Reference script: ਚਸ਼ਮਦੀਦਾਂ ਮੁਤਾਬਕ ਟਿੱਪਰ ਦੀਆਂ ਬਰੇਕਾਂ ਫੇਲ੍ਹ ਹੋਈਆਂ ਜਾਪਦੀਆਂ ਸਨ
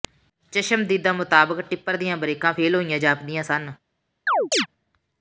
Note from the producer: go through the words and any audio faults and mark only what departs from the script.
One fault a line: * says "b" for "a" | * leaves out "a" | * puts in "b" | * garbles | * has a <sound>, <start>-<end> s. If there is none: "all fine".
* has a chirp, 4.3-4.7 s